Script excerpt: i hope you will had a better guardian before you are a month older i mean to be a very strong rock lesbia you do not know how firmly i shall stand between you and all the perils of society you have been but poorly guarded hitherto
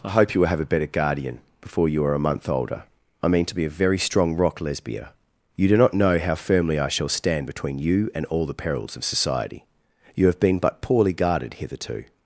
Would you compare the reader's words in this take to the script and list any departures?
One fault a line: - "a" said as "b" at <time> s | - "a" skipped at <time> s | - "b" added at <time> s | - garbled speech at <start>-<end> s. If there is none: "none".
- "had" said as "have" at 0.5 s